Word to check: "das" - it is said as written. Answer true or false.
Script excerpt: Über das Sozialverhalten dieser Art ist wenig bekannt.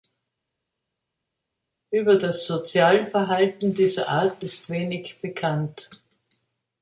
true